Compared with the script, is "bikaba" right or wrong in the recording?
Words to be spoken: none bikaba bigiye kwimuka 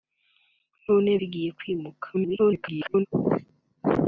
wrong